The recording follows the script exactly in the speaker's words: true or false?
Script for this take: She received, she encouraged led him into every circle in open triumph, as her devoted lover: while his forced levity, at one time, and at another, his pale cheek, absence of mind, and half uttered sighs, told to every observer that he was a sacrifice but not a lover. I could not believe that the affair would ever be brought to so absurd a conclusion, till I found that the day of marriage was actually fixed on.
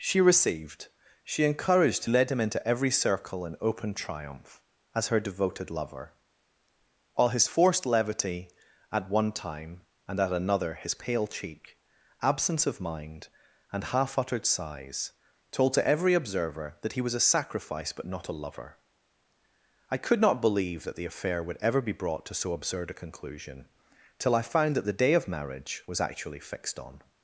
true